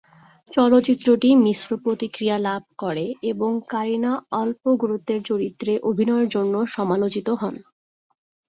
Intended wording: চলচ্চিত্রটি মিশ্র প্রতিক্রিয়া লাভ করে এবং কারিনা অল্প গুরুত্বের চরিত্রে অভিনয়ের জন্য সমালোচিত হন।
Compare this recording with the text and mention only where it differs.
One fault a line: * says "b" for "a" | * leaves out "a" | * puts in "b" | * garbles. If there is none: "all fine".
all fine